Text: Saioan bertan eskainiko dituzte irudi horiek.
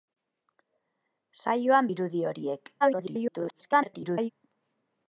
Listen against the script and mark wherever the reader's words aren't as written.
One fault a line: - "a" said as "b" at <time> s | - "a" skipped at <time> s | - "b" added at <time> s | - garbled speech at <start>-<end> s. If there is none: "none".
- "bertan eskainiko dituzte" skipped at 1.9 s
- garbled speech at 2.8-4.3 s